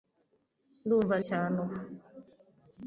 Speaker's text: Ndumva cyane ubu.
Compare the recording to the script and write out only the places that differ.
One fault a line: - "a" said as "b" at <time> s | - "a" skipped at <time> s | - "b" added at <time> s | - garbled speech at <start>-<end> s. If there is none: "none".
none